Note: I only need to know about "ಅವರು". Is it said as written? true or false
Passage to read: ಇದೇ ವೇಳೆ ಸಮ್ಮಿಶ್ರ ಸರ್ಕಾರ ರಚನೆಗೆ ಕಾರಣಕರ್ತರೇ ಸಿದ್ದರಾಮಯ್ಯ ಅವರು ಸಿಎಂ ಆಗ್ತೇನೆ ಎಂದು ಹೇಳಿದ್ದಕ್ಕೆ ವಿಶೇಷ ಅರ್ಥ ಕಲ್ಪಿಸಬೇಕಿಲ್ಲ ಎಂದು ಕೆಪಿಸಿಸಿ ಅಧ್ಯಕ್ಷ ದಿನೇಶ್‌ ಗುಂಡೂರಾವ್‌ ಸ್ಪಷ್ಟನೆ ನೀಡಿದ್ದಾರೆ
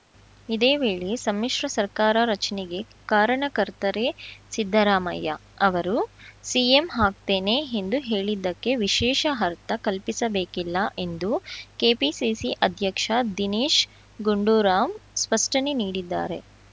true